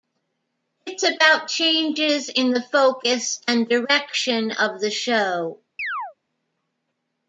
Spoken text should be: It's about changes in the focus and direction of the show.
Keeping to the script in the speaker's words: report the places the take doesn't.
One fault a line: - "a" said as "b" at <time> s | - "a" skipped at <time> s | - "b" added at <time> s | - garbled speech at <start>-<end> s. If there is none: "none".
none